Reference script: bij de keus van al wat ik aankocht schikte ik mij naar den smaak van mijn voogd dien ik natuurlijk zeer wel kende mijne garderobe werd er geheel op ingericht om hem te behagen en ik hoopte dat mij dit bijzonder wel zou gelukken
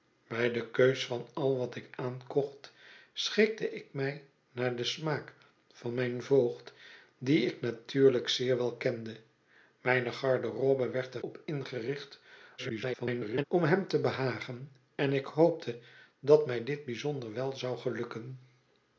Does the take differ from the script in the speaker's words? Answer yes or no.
yes